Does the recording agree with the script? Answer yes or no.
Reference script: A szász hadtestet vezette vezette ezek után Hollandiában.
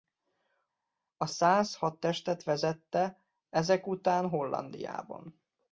no